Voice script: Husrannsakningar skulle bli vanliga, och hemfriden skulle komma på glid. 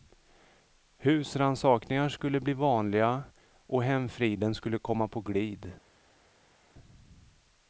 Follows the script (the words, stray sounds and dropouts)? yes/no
yes